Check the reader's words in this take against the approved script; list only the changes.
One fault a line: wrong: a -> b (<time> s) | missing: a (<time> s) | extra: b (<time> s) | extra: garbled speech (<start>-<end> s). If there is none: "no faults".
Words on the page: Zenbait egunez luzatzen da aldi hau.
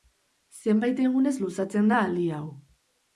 no faults